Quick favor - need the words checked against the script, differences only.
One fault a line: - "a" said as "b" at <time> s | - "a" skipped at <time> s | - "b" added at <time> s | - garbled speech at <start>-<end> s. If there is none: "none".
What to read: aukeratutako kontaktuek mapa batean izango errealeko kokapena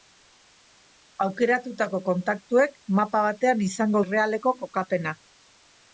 none